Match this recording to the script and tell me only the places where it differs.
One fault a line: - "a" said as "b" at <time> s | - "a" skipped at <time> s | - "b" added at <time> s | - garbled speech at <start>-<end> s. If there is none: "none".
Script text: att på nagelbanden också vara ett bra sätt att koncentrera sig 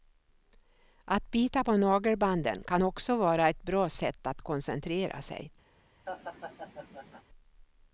- "bita" added at 1.3 s
- "kan" added at 2.7 s